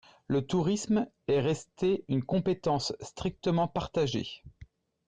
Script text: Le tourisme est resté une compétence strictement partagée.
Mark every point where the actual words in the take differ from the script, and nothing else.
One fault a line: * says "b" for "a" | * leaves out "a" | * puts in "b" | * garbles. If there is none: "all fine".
all fine